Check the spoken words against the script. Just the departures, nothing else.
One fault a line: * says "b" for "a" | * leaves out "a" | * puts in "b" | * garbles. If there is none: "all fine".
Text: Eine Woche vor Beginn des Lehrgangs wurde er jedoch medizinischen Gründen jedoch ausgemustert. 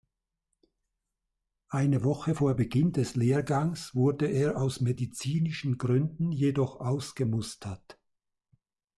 * says "aus" for "jedoch"